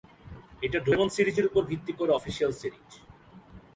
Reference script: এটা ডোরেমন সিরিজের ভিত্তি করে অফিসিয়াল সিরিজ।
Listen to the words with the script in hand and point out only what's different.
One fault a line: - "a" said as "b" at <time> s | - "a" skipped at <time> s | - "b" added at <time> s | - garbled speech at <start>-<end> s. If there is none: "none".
- "উপর" added at 1.5 s